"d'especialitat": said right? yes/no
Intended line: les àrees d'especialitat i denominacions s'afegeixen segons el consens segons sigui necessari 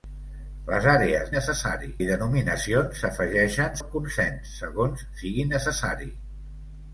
no